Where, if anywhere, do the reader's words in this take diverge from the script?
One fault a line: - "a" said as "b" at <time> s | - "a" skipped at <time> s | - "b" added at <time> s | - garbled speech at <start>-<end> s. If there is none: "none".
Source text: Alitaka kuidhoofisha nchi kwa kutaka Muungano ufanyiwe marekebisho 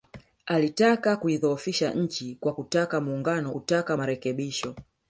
- "ufanyiwe" said as "kutaka" at 3.5 s